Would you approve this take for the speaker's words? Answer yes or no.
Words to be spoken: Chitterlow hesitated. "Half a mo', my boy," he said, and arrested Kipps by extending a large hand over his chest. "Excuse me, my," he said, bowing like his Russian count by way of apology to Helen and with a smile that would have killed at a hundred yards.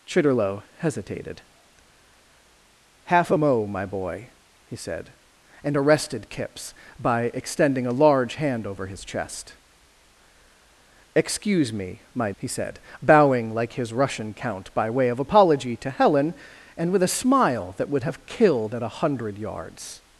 yes